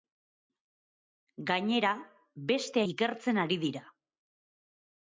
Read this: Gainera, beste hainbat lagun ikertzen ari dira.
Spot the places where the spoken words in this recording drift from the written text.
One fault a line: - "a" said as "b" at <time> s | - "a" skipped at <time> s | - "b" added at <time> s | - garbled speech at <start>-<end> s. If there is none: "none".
- "hainbat lagun" skipped at 2.8 s